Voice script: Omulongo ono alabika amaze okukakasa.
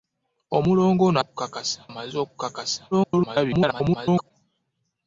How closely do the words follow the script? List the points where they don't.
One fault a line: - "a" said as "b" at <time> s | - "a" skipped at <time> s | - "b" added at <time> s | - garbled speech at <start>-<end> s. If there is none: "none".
- "alabika" said as "okukakasa" at 1.2 s
- garbled speech at 2.9-4.3 s